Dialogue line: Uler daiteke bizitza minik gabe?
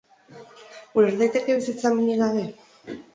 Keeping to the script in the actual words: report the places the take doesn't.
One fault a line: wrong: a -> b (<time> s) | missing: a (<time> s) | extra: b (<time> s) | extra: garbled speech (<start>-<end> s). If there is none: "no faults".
no faults